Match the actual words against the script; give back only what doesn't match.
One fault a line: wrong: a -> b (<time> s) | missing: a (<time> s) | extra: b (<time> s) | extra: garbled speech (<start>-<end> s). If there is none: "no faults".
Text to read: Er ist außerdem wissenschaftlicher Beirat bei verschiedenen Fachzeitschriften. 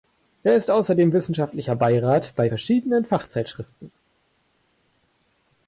no faults